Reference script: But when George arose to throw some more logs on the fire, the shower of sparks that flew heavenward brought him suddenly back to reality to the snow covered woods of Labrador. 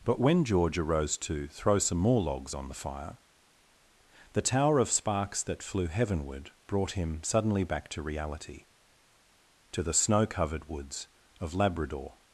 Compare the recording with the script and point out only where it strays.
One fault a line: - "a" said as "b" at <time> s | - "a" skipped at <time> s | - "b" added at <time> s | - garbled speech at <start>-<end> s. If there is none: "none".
- "shower" said as "tower" at 4.4 s